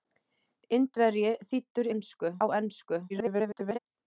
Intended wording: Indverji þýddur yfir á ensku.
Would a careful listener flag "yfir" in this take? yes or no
yes